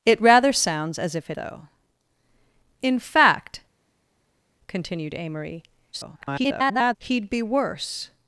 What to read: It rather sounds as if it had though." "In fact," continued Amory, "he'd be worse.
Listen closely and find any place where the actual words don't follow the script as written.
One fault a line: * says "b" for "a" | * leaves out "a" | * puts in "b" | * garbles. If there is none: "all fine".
* leaves out "had"
* garbles